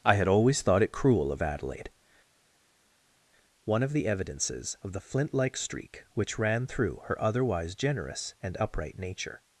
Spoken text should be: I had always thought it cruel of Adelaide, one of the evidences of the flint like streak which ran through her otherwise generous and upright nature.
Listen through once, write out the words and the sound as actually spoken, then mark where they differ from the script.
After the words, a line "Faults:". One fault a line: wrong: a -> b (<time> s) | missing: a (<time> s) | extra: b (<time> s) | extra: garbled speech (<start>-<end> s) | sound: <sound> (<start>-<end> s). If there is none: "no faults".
I had always thought it cruel of Adelaide, one of the evidences of the flint like streak which ran through her otherwise generous and upright nature.
Faults:
no faults